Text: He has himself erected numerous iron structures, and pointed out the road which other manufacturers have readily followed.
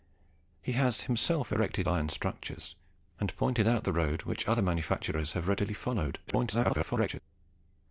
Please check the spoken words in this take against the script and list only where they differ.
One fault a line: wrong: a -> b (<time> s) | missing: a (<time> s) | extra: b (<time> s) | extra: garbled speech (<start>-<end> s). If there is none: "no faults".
missing: numerous (1.9 s)
extra: garbled speech (6.3-7.2 s)